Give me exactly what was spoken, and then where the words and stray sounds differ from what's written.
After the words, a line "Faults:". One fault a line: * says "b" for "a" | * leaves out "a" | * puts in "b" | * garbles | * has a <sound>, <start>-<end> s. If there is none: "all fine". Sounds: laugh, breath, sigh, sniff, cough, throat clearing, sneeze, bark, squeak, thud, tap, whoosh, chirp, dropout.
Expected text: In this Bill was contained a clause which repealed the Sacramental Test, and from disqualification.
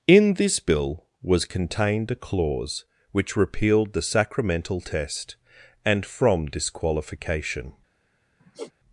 In this Bill was contained a clause which repealed the Sacramental Test, and from disqualification.
Faults:
* has a sigh, 8.4-8.7 s